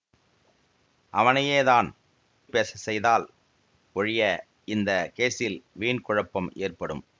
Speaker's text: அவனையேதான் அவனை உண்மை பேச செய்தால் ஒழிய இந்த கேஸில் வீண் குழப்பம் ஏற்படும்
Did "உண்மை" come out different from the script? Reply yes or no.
yes